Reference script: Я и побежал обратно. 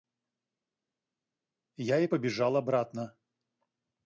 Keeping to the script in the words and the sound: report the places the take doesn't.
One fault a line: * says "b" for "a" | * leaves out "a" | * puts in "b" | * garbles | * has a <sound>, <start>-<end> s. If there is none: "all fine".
all fine